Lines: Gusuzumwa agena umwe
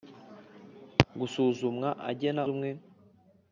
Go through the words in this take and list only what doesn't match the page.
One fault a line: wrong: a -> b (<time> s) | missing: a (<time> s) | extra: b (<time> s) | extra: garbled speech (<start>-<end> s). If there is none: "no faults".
no faults